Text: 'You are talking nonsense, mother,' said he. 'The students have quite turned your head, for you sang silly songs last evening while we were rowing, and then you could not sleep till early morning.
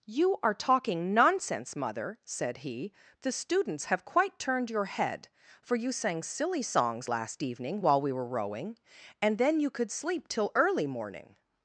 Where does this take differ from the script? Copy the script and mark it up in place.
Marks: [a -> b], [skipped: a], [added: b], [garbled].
'You are talking nonsense, mother,' said he. 'The students have quite turned your head, for you sang silly songs last evening while we were rowing, and then you could [skipped: not] sleep till early morning.